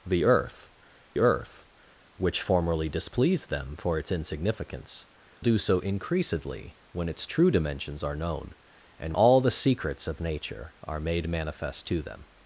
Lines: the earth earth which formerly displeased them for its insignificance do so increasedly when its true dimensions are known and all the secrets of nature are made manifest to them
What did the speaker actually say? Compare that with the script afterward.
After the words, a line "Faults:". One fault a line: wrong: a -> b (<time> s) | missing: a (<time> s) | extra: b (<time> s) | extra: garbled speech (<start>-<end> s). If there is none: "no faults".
the earth earth which formerly displeased them for its insignificance do so increasedly when its true dimensions are known and all the secrets of nature are made manifest to them
Faults:
no faults